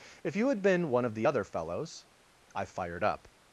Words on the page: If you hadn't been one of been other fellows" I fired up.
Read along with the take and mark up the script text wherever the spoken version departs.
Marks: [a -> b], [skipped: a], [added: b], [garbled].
If you [hadn't -> had] been one of [been -> the] other fellows" I fired up.